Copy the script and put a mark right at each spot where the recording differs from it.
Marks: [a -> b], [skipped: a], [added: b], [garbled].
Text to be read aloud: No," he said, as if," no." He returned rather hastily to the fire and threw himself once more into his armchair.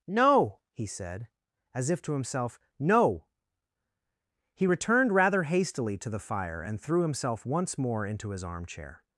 No," he said, as if," [added: to himself] no." He returned rather hastily to the fire and threw himself once more into his armchair.